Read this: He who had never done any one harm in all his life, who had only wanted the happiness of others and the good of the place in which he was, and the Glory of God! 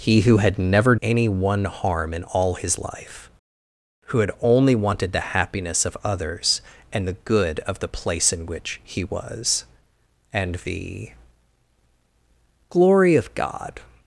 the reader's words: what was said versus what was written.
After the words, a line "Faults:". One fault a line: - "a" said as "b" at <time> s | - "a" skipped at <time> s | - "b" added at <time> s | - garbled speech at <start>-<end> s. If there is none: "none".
He who had never any one harm in all his life, who had only wanted the happiness of others and the good of the place in which he was, and the Glory of God!
Faults:
- "done" skipped at 0.9 s